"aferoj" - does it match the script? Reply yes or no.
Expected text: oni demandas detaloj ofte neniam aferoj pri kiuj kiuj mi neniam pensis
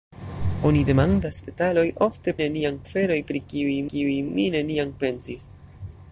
yes